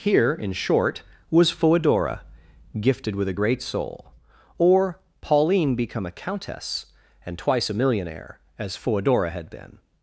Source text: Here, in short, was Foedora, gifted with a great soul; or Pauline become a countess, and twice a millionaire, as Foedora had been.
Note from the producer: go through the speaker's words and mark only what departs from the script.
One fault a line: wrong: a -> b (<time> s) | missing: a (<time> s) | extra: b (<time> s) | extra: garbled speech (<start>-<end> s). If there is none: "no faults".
no faults